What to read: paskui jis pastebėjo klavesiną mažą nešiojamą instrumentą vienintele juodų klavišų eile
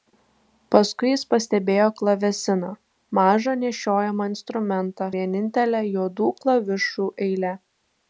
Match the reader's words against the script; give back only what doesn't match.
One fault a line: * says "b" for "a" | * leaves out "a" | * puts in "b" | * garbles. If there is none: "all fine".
all fine